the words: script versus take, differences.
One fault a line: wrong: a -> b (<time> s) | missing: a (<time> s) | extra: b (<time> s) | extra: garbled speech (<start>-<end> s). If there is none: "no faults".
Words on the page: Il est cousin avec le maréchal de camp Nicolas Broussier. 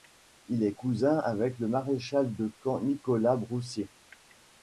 no faults